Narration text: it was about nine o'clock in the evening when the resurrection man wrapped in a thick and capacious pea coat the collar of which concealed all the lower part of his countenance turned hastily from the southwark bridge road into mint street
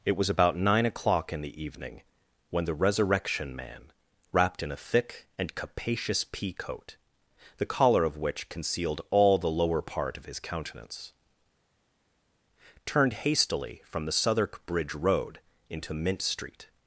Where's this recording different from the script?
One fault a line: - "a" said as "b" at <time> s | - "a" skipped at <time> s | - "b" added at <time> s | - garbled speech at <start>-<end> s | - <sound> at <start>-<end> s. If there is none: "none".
none